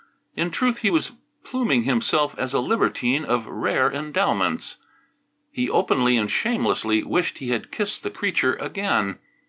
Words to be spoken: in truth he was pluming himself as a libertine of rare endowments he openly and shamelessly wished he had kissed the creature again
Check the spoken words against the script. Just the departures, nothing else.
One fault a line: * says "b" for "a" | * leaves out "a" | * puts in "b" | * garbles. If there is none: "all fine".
all fine